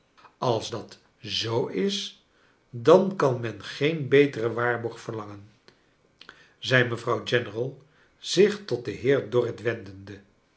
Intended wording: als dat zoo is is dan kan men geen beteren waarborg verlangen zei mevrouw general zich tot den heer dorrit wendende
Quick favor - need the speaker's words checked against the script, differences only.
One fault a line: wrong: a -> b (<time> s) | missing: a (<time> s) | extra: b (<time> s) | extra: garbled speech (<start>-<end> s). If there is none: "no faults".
missing: is (2.2 s)